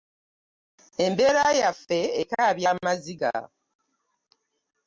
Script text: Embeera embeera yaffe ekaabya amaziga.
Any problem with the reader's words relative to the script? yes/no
yes